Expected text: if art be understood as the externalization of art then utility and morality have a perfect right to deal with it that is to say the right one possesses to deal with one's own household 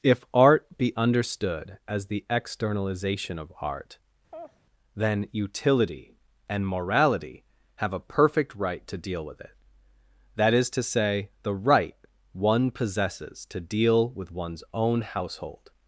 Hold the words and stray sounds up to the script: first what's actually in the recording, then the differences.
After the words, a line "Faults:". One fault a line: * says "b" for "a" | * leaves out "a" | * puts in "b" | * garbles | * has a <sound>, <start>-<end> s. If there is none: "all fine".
if art be understood as the externalization of art then utility and morality have a perfect right to deal with it that is to say the right one possesses to deal with one's own household
Faults:
* has a laugh, 4.3-4.6 s